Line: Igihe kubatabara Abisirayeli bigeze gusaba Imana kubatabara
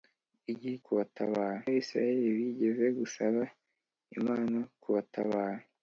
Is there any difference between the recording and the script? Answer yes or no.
no